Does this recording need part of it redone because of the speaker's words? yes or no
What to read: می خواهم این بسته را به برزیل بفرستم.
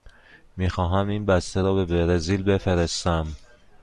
no